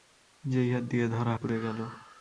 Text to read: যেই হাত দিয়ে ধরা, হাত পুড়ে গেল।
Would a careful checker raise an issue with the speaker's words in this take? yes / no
yes